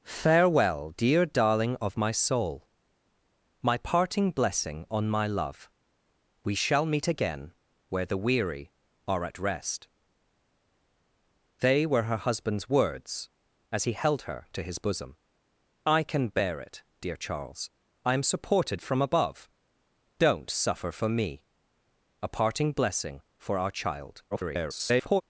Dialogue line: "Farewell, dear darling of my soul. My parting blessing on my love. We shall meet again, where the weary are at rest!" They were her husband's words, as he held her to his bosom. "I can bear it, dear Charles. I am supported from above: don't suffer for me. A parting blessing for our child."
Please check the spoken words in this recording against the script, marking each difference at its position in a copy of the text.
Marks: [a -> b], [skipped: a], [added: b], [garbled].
"Farewell, dear darling of my soul. My parting blessing on my love. We shall meet again, where the weary are at rest!" They were her husband's words, as he held her to his bosom. "I can bear it, dear Charles. I am supported from above: don't suffer for me. A parting blessing for our child." [garbled]